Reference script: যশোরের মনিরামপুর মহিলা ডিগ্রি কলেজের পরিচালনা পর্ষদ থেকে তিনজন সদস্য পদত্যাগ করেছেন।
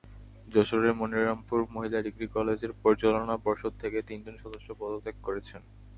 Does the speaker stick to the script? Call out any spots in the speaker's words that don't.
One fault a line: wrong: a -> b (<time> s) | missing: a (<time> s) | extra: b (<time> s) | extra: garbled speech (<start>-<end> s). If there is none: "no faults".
no faults